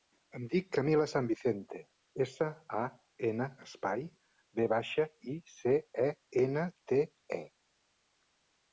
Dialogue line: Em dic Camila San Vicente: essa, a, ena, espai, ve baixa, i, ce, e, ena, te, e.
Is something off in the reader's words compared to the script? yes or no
no